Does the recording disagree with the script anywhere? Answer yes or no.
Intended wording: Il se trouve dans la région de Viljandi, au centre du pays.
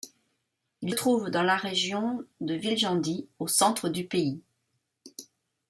yes